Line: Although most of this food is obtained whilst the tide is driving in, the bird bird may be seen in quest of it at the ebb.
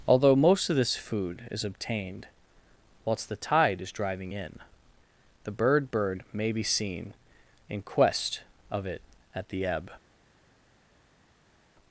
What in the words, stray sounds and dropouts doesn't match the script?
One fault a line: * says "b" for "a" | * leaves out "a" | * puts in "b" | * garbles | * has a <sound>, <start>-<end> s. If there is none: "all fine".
all fine